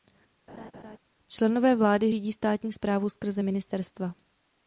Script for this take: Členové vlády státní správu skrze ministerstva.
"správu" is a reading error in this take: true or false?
false